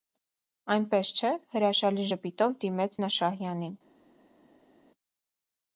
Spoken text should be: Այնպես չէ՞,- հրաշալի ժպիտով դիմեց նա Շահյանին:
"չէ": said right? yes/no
yes